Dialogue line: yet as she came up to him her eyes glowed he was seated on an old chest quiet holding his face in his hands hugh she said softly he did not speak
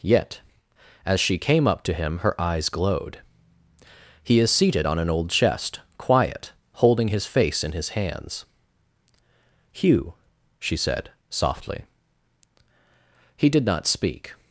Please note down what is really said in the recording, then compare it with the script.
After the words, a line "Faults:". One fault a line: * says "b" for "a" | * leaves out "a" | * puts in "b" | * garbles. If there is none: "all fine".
yet as she came up to him her eyes glowed he is seated on an old chest quiet holding his face in his hands hugh she said softly he did not speak
Faults:
* says "is" for "was"